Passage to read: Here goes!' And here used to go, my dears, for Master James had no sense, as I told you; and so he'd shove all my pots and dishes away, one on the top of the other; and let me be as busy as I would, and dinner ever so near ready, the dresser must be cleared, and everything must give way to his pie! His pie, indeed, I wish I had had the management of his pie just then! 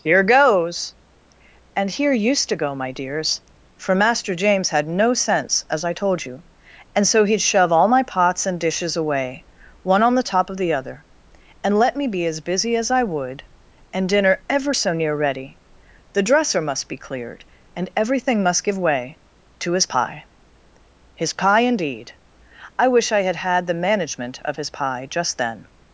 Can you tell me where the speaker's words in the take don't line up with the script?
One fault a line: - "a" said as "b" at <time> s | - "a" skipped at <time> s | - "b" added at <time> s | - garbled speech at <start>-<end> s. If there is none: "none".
none